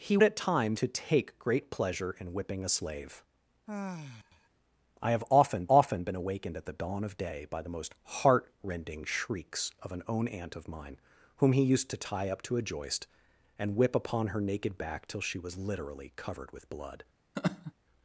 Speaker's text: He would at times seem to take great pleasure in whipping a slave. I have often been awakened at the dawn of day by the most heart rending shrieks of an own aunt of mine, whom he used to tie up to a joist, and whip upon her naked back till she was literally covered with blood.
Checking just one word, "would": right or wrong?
wrong